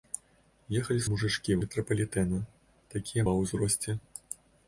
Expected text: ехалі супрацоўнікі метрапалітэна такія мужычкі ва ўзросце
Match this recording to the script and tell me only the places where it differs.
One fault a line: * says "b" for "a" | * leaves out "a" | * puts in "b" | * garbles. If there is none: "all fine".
* says "мужычкі" for "супрацоўнікі"
* leaves out "мужычкі"